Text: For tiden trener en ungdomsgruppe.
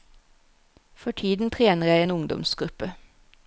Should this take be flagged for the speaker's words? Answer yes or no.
yes